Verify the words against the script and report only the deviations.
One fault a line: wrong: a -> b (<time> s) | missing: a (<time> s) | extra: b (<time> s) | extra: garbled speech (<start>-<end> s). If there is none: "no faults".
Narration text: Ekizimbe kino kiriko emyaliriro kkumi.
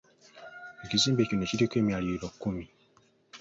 no faults